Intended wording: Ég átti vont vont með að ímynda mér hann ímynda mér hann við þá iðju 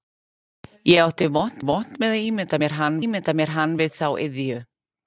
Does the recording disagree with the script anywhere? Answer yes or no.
no